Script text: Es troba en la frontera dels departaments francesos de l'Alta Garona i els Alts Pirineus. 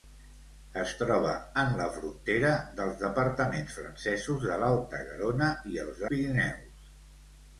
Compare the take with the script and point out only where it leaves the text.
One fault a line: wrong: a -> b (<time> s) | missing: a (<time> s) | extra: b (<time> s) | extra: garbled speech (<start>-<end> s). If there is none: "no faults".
missing: Alts (6.0 s)